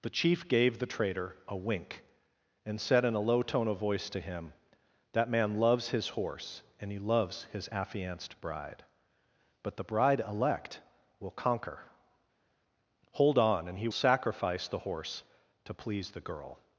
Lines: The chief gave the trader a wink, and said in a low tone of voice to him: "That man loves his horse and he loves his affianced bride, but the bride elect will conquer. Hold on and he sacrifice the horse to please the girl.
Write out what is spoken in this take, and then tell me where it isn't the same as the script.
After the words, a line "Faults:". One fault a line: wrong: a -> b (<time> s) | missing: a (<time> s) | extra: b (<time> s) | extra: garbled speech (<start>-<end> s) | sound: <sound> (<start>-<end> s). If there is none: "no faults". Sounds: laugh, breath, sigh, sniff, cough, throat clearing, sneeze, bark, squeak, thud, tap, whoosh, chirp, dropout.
The chief gave the trader a wink, and said in a low tone of voice to him: "That man loves his horse and he loves his affianced bride, but the bride elect will conquer. Hold on and he sacrifice the horse to please the girl.
Faults:
no faults